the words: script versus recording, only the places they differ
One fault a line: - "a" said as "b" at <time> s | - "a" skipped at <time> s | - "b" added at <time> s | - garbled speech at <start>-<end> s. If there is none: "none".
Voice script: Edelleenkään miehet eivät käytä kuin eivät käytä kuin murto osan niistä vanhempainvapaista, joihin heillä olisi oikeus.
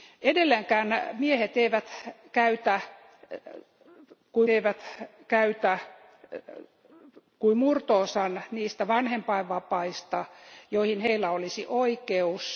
none